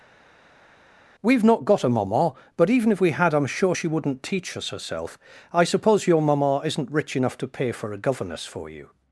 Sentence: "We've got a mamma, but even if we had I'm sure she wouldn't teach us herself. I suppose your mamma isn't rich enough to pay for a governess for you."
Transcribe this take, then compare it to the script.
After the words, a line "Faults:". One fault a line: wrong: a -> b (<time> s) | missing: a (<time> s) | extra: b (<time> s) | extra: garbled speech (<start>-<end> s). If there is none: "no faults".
"We've not got a mamma, but even if we had I'm sure she wouldn't teach us herself. I suppose your mamma isn't rich enough to pay for a governess for you."
Faults:
extra: not (1.4 s)